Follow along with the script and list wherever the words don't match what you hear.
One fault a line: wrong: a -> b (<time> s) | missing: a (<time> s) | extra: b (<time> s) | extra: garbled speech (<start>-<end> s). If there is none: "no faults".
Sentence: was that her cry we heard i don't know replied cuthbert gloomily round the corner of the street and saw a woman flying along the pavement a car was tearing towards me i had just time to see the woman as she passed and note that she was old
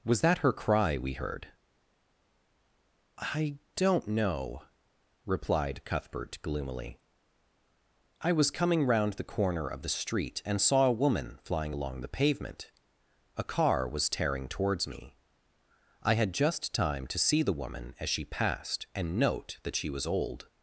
extra: i was coming (8.2 s)